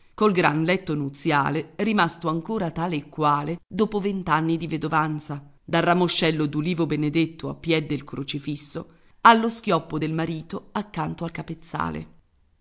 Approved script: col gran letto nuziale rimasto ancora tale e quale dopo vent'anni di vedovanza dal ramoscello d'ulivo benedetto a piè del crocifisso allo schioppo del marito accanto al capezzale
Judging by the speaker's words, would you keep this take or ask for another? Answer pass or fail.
pass